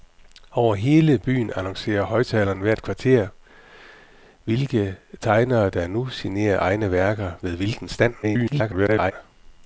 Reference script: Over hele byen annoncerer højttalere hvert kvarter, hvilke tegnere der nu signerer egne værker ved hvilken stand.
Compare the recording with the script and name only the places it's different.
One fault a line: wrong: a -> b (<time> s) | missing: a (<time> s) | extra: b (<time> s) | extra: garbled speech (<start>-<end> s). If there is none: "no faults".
extra: garbled speech (8.2-9.1 s)